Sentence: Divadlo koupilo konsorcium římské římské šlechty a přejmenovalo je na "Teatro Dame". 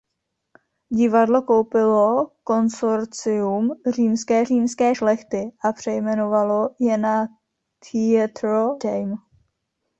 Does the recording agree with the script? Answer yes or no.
yes